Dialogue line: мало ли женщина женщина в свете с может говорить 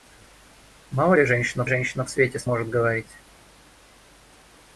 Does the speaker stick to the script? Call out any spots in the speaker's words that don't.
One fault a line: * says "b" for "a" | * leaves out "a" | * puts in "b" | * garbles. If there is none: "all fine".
all fine